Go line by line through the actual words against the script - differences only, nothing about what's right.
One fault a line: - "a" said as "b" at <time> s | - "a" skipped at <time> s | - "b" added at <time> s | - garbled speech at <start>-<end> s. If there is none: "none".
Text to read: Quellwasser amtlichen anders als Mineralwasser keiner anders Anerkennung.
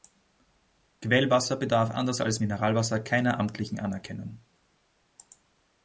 - "amtlichen" said as "bedarf" at 1.6 s
- "anders" said as "amtlichen" at 3.4 s